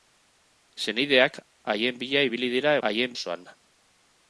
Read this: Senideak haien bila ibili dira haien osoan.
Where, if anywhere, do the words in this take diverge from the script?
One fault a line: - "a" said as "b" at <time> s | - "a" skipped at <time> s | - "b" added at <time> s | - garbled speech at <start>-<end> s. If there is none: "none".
none